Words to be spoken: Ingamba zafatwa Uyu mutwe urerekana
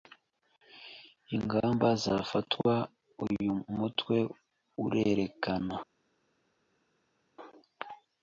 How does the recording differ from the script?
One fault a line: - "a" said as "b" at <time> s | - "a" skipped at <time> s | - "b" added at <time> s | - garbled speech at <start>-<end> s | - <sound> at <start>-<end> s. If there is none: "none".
none